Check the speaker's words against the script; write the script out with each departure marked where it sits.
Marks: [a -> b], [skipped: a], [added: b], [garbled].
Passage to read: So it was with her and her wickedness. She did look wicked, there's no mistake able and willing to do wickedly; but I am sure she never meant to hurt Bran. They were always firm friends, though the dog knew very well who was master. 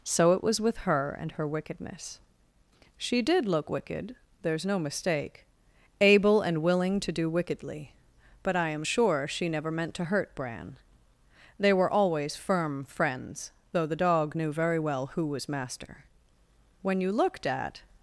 So it was with her and her wickedness. She did look wicked, there's no mistake able and willing to do wickedly; but I am sure she never meant to hurt Bran. They were always firm friends, though the dog knew very well who was master. [added: When you looked at]